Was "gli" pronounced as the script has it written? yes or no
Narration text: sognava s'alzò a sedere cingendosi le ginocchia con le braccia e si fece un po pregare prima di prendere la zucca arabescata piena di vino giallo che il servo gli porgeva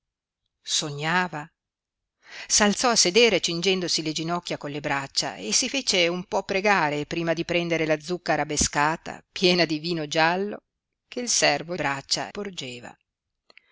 no